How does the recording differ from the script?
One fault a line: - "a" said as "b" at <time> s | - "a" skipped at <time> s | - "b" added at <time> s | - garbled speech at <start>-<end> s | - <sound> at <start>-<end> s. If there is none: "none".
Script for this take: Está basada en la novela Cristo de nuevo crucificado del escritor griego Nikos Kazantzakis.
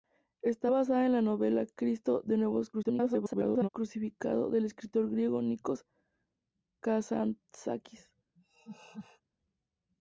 - garbled speech at 2.7-3.7 s
- laugh at 8.4-9.2 s